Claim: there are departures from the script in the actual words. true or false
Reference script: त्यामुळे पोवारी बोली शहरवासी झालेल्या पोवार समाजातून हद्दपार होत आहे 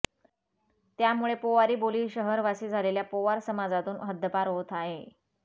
false